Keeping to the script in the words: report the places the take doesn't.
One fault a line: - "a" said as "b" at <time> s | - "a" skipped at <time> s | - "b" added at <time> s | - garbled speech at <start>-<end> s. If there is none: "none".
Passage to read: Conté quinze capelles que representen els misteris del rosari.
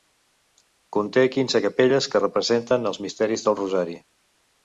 none